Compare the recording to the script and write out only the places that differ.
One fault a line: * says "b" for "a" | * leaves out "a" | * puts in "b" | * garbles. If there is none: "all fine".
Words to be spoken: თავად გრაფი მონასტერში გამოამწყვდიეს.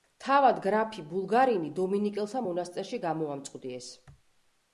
* puts in "ბულგარინი დომინიკელთა"